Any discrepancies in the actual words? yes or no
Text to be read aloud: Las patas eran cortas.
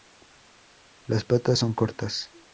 yes